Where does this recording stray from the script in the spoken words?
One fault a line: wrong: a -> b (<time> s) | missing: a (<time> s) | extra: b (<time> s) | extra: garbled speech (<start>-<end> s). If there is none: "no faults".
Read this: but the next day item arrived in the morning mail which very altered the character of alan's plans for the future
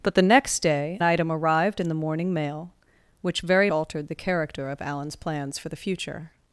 no faults